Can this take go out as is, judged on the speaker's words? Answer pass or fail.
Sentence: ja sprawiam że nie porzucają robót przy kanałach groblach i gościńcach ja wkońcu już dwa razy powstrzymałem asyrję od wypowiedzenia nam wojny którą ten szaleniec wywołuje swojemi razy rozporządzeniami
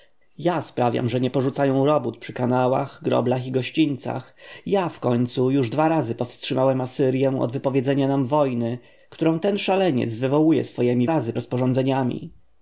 pass